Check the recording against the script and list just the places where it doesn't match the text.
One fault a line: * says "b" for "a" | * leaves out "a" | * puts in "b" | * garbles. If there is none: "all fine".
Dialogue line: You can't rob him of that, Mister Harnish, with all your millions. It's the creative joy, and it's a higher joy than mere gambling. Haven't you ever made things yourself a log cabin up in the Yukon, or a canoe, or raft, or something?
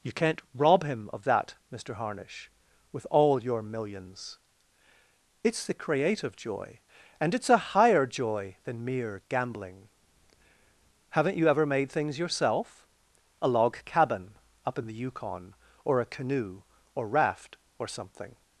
all fine